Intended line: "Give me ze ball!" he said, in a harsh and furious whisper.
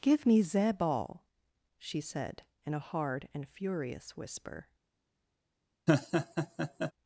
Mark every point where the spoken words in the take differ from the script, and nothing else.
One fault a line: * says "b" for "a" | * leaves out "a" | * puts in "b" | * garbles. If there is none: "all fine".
* says "she" for "he"
* says "hard" for "harsh"